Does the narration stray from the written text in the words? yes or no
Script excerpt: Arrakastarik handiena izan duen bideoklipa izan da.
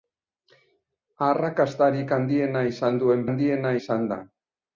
yes